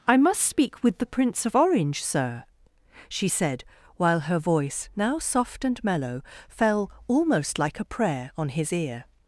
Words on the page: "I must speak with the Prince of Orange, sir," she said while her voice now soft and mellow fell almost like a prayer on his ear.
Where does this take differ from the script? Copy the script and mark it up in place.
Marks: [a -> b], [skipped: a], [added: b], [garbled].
"I must speak with the Prince of Orange, sir," she said while her voice now soft and mellow fell almost like a prayer on his ear.